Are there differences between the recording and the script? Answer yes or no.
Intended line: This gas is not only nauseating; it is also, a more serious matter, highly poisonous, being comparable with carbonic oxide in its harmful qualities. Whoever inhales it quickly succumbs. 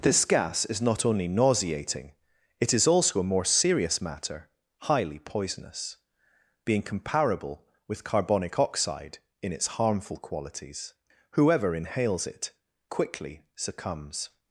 no